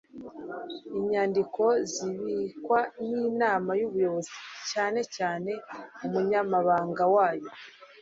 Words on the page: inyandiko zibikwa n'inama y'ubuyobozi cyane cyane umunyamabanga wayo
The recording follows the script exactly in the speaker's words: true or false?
true